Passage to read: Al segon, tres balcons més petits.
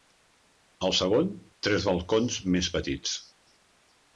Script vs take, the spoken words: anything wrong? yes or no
no